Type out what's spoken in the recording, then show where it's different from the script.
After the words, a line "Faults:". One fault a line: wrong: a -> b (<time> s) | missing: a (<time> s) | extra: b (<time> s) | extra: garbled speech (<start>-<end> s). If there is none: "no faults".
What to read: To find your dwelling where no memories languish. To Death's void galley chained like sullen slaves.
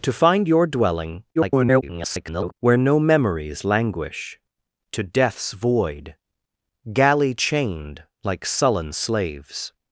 To find your dwelling [garbled] where no memories languish. To Death's void galley chained like sullen slaves.
Faults:
extra: garbled speech (1.4-2.5 s)